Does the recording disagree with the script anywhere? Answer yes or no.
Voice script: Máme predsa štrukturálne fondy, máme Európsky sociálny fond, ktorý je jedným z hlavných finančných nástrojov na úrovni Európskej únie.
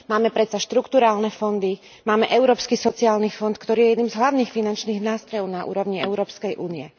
no